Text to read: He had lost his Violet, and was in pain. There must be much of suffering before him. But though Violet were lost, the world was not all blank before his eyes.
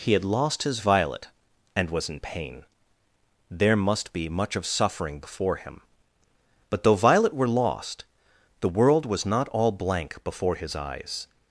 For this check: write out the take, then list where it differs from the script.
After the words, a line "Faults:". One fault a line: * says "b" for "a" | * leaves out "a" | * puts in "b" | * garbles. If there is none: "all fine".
He had lost his Violet, and was in pain. There must be much of suffering before him. But though Violet were lost, the world was not all blank before his eyes.
Faults:
all fine